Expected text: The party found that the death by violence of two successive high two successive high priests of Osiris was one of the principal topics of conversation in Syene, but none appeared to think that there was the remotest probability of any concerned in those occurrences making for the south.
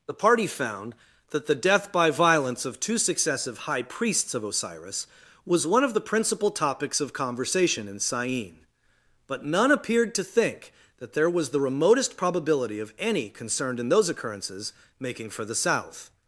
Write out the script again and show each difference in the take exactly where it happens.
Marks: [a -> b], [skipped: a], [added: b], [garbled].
The party found that the death by violence of two successive high [skipped: two successive high] priests of Osiris was one of the principal topics of conversation in Syene, but none appeared to think that there was the remotest probability of any concerned in those occurrences making for the south.